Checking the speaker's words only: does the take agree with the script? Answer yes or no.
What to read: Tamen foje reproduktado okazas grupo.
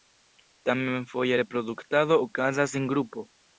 no